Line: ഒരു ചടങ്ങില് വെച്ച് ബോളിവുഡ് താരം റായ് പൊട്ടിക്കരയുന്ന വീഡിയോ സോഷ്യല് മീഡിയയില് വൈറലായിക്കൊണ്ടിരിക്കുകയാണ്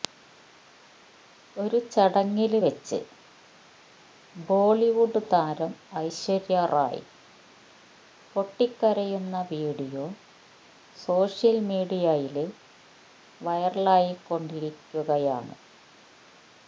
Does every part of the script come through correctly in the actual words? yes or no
no